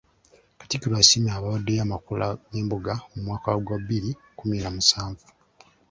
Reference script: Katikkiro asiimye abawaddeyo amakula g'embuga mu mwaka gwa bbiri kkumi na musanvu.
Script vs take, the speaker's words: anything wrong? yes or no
no